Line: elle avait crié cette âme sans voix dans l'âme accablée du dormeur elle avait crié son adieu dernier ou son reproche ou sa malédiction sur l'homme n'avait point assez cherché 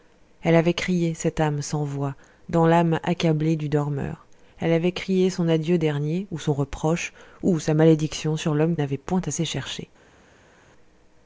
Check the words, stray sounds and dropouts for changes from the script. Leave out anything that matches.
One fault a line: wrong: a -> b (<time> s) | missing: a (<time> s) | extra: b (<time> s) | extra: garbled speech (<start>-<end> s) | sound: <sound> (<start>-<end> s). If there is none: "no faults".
no faults